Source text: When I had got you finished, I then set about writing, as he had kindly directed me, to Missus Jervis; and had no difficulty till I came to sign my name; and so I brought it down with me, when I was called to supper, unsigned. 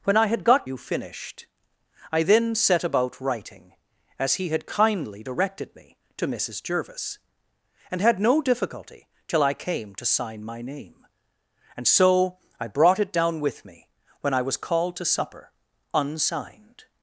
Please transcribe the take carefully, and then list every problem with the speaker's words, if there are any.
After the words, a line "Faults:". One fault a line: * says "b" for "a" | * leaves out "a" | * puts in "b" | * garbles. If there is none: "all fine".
When I had got you finished, I then set about writing, as he had kindly directed me, to Missus Jervis; and had no difficulty till I came to sign my name; and so I brought it down with me, when I was called to supper, unsigned.
Faults:
all fine